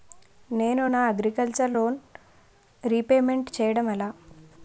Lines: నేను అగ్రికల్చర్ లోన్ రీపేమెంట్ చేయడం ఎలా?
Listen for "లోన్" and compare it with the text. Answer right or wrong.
right